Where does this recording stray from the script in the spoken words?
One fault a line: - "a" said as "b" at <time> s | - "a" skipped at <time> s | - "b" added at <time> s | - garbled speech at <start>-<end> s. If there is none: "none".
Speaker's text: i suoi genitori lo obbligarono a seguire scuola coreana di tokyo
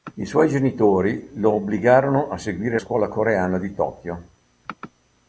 none